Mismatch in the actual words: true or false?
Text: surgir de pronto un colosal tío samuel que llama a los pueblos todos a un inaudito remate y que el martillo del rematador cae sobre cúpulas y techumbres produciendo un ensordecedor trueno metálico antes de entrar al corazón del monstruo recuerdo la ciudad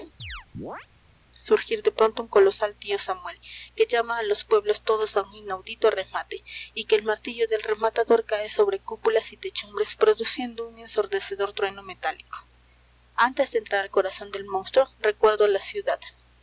false